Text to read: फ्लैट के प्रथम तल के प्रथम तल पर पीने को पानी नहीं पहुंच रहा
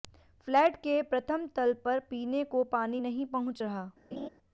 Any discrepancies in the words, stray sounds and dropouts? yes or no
yes